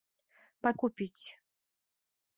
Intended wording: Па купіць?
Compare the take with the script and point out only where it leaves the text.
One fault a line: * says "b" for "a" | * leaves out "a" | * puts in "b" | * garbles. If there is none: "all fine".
all fine